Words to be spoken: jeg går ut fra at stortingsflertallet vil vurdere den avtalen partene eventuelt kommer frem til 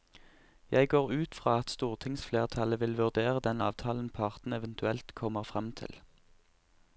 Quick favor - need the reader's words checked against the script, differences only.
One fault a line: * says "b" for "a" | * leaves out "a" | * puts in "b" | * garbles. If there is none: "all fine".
all fine